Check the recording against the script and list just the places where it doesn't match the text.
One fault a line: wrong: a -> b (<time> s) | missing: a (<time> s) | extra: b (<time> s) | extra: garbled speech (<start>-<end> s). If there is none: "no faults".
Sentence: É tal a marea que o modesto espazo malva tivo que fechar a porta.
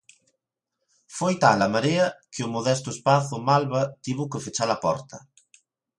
wrong: É -> Foi (1.2 s)